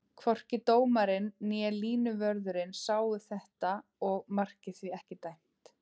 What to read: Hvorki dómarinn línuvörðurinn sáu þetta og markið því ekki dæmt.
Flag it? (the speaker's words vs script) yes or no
yes